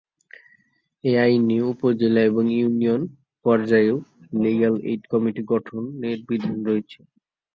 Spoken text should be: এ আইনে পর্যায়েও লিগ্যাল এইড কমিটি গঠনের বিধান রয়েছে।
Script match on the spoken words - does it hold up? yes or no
no